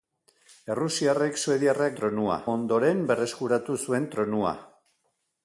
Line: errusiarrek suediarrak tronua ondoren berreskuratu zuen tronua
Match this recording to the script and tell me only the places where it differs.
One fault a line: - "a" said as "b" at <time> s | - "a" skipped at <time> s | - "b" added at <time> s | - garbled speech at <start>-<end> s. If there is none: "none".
none